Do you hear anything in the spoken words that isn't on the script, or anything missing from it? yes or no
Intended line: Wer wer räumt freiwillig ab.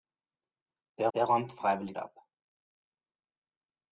no